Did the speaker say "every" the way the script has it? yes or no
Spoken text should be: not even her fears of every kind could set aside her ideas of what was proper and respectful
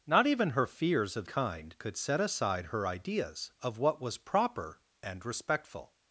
no